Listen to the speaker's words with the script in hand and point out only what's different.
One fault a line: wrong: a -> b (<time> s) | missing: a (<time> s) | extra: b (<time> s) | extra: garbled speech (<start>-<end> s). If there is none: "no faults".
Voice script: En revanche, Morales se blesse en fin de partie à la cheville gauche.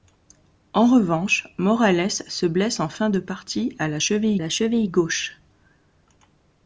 extra: la cheville (4.4 s)